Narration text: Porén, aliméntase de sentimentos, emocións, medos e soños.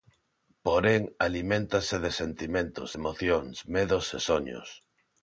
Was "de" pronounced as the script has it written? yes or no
yes